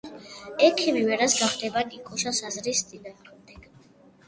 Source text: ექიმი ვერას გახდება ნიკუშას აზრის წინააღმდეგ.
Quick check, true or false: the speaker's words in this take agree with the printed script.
true